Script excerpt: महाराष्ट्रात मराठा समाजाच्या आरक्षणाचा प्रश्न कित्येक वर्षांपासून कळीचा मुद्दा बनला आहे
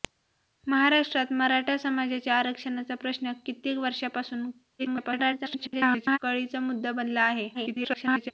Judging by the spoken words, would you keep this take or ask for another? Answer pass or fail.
fail